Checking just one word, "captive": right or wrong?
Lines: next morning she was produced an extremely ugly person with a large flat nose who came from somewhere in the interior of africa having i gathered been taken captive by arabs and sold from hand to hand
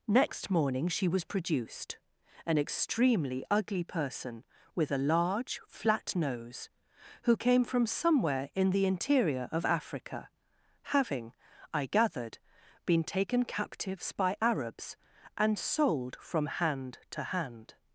wrong